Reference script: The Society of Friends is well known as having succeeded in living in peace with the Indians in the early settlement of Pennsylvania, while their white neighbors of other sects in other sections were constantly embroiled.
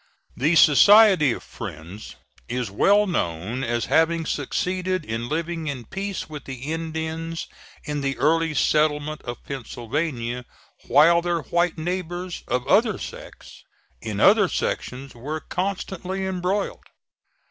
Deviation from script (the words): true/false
false